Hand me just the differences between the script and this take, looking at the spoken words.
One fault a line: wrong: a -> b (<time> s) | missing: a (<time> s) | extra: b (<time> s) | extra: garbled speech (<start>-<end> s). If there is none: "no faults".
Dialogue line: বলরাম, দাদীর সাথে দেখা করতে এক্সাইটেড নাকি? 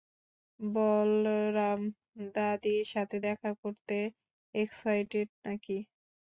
no faults